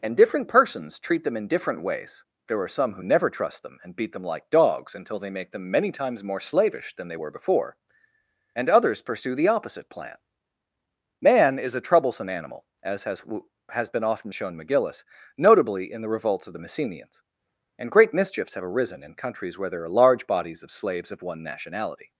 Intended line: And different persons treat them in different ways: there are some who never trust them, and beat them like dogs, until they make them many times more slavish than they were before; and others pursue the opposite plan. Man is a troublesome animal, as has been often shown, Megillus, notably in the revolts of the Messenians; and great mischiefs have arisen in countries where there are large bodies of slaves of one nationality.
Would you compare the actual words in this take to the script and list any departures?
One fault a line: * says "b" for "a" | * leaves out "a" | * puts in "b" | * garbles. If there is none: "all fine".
* puts in "has"